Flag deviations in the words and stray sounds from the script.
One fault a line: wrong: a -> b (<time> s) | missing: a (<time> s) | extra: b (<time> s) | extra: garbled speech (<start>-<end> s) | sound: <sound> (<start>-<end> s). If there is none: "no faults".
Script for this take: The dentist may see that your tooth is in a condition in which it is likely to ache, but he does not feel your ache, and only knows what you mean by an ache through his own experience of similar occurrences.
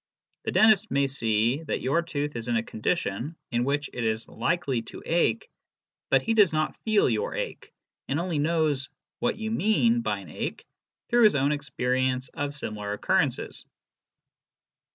no faults